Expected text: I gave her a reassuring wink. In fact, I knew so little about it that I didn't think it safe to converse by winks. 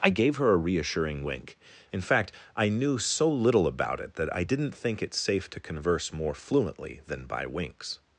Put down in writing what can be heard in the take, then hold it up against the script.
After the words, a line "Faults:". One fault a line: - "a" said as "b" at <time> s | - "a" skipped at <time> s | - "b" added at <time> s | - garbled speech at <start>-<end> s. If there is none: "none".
I gave her a reassuring wink. In fact, I knew so little about it that I didn't think it safe to converse more fluently than by winks.
Faults:
- "more fluently than" added at 6.1 s